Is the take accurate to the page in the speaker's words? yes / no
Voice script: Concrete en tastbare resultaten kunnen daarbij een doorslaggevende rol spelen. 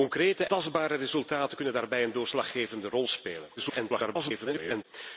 no